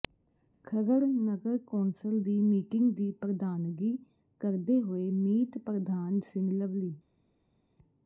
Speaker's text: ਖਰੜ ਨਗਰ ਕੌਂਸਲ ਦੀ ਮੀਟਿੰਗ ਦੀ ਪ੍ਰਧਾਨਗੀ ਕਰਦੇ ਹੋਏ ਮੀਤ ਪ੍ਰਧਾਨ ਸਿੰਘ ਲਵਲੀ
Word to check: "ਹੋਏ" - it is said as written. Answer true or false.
true